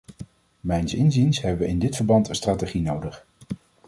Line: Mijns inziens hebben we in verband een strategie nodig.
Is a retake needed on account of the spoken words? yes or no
yes